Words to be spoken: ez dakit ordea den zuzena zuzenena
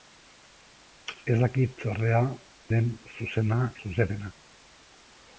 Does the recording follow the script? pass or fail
pass